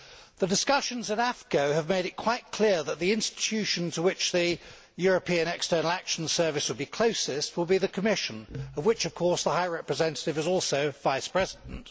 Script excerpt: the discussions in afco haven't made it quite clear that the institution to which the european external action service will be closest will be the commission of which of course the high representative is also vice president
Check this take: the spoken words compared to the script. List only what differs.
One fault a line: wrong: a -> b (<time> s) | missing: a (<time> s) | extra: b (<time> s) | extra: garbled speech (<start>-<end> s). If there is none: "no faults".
wrong: haven't -> have (1.8 s)